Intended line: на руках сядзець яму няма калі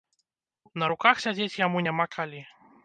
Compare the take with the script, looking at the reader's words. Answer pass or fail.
pass